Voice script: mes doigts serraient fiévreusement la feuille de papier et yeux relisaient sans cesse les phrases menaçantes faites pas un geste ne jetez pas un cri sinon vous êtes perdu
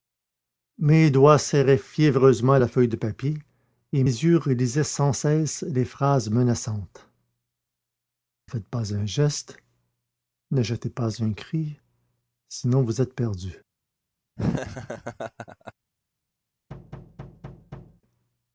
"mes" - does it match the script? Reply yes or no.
yes